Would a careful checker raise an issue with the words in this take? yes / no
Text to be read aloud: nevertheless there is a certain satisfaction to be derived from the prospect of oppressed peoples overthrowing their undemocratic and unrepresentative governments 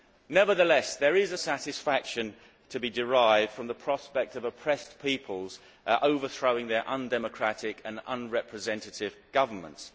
yes